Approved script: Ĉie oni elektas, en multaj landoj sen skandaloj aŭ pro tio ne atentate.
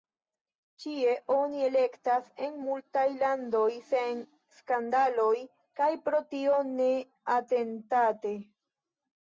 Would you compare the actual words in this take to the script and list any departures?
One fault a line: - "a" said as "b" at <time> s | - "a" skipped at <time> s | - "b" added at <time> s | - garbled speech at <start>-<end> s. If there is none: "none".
- "aŭ" said as "kaj" at 5.8 s